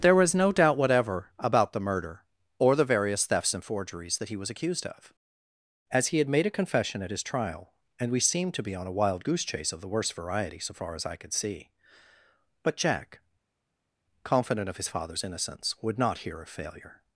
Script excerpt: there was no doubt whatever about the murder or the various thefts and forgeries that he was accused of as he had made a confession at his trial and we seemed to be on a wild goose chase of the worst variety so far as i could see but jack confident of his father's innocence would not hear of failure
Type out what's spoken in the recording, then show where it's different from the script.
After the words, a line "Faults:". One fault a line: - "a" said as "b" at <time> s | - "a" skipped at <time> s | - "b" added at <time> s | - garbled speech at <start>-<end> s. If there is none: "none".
there was no doubt whatever about the murder or the various thefts and forgeries that he was accused of as he had made a confession at his trial and we seemed to be on a wild goose chase of the worst variety so far as i could see but jack confident of his father's innocence would not hear of failure
Faults:
none